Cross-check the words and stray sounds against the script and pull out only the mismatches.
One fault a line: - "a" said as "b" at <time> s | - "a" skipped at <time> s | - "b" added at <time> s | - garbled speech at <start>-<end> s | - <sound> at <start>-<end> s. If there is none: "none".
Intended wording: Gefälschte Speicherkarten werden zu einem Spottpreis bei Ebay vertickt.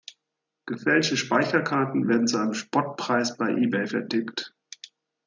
none